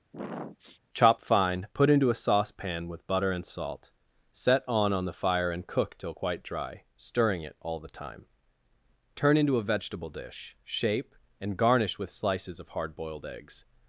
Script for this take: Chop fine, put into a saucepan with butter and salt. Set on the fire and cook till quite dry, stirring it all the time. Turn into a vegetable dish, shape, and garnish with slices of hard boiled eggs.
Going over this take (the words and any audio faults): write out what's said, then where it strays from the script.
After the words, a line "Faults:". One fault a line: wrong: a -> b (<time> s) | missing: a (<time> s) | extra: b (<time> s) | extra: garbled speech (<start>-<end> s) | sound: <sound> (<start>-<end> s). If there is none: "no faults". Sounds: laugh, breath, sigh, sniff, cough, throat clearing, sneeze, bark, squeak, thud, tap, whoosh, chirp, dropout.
Chop fine, put into a saucepan with butter and salt. Set on on the fire and cook till quite dry, stirring it all the time. Turn into a vegetable dish, shape, and garnish with slices of hard boiled eggs.
Faults:
sound: sniff (0.1-0.8 s)
extra: on (4.9 s)